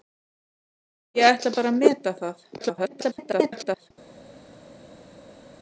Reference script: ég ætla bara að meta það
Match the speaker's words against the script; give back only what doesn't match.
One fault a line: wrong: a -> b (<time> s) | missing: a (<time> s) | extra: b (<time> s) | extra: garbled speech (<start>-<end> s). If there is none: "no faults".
extra: garbled speech (2.6-3.9 s)